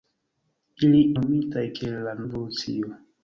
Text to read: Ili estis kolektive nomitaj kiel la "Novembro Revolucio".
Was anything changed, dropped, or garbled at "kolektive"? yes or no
yes